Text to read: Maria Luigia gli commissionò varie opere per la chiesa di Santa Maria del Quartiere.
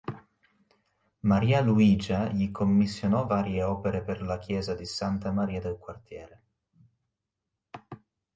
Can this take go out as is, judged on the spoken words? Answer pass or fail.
pass